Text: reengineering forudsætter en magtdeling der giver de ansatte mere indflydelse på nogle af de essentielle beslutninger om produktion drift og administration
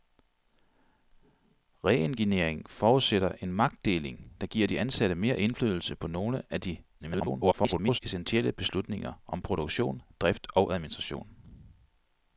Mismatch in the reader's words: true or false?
true